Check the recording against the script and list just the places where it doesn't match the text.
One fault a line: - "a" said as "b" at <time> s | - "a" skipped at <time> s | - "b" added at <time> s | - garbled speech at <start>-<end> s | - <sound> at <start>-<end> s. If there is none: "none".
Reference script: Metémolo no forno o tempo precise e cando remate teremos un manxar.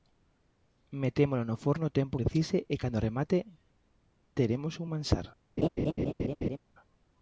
- laugh at 5.6-6.6 s